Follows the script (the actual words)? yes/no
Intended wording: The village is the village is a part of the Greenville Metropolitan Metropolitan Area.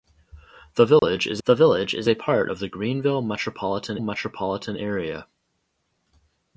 yes